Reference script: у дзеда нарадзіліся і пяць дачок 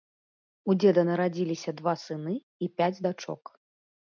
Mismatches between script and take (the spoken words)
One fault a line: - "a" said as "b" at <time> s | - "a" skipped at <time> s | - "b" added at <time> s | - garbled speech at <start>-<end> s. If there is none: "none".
- "два сыны" added at 1.8 s